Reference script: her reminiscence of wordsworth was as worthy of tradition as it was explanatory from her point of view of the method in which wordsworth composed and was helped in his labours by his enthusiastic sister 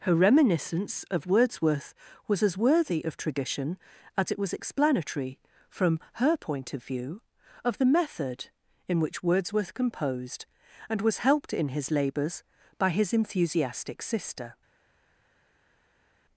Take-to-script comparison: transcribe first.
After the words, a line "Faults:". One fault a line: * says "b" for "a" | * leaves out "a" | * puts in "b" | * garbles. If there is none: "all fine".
her reminiscence of wordsworth was as worthy of tradition as it was explanatory from her point of view of the method in which wordsworth composed and was helped in his labours by his enthusiastic sister
Faults:
all fine